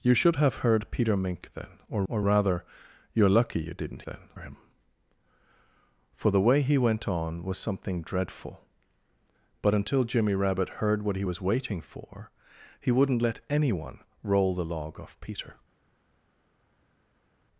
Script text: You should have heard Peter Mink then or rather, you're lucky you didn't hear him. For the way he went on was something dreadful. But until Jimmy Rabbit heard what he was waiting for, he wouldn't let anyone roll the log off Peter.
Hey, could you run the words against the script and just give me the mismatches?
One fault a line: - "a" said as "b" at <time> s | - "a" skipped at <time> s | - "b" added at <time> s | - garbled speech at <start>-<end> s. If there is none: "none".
- "or" added at 2.1 s
- "hear" said as "then" at 4.0 s